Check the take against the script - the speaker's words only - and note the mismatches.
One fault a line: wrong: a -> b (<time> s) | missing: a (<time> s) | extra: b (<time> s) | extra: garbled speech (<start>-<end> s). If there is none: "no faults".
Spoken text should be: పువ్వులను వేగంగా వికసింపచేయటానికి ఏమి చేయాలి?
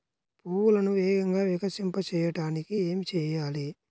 no faults